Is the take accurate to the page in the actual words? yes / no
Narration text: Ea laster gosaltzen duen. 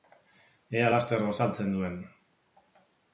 yes